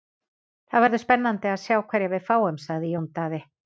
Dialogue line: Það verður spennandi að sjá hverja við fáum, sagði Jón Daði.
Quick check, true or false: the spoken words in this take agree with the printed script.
true